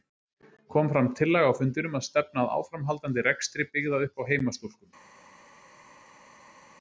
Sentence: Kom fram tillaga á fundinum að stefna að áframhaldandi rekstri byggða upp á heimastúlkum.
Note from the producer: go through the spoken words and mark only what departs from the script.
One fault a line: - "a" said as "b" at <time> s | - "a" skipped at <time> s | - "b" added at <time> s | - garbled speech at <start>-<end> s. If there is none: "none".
none